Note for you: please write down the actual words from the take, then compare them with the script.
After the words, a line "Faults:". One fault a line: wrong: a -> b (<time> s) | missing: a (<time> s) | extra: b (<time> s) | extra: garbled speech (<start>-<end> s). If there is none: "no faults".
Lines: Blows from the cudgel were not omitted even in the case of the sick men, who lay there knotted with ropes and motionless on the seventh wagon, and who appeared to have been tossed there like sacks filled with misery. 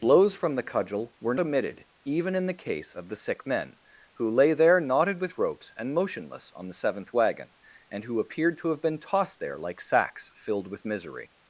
Blows from the cudgel were omitted even in the case of the sick men, who lay there knotted with ropes and motionless on the seventh wagon, and who appeared to have been tossed there like sacks filled with misery.
Faults:
missing: not (1.4 s)